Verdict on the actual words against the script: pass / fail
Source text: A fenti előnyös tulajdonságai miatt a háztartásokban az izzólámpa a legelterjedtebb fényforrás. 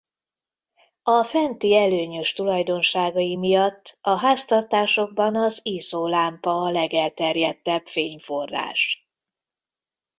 pass